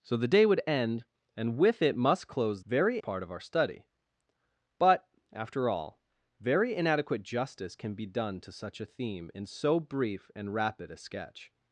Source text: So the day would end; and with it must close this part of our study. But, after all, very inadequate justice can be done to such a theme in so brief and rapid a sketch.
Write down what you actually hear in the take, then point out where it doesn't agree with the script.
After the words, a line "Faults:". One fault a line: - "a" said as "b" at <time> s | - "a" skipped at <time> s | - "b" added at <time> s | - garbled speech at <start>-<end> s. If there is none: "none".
So the day would end; and with it must close very part of our study. But, after all, very inadequate justice can be done to such a theme in so brief and rapid a sketch.
Faults:
- "this" said as "very" at 2.7 s